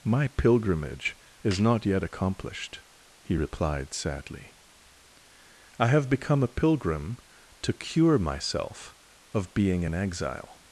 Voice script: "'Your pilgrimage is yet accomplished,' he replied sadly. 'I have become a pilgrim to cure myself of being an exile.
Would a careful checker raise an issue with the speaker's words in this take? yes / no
yes